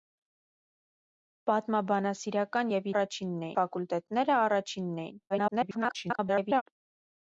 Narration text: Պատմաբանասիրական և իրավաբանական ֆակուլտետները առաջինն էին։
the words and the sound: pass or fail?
fail